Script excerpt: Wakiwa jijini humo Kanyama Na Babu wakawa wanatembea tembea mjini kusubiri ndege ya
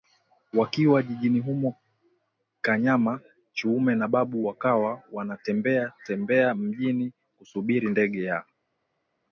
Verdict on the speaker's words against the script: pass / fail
fail